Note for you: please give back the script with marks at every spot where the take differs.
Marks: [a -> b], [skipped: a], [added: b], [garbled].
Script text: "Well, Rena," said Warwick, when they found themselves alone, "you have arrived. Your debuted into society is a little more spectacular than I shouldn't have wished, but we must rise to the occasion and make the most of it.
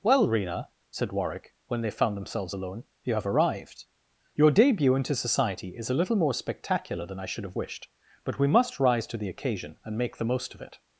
"Well, Rena," said Warwick, when they found themselves alone, "you have arrived. Your [debuted -> debut] into society is a little more spectacular than I [shouldn't -> should] have wished, but we must rise to the occasion and make the most of it.